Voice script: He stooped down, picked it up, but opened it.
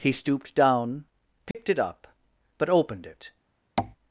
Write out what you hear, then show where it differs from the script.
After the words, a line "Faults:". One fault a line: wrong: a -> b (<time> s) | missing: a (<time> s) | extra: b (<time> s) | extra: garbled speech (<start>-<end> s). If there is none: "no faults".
He stooped down, picked it up, but opened it.
Faults:
no faults